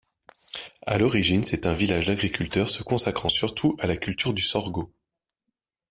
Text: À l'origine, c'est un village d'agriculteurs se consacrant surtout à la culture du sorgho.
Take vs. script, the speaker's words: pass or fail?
pass